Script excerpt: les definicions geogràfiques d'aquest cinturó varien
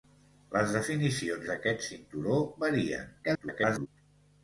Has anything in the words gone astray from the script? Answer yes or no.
yes